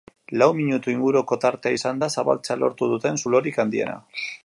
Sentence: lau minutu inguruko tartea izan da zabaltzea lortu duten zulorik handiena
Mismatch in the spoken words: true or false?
false